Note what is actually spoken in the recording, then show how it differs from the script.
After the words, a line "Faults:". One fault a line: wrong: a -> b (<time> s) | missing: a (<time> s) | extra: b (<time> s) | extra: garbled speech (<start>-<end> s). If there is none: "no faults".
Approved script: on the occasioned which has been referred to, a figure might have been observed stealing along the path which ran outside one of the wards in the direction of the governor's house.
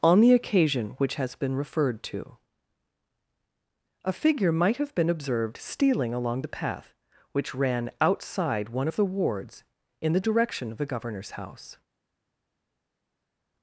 on the occasion which has been referred to, a figure might have been observed stealing along the path which ran outside one of the wards in the direction of the governor's house.
Faults:
wrong: occasioned -> occasion (0.3 s)